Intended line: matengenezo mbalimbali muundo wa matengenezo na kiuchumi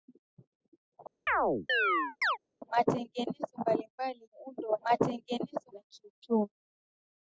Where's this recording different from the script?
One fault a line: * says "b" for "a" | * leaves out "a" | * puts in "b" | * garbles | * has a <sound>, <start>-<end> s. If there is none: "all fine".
* has a chirp, 1.3-2.4 s